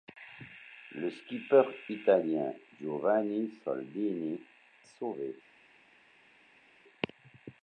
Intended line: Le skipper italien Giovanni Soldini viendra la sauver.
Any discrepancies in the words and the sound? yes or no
yes